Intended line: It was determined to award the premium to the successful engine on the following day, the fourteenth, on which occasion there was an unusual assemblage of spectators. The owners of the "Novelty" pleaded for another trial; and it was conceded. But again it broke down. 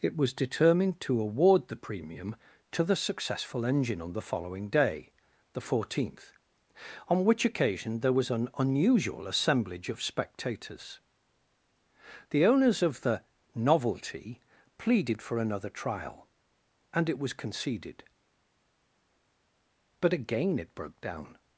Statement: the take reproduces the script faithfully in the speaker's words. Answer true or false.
true